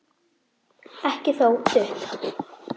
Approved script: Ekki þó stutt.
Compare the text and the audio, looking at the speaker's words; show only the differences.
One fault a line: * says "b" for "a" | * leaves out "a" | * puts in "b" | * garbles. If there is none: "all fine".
all fine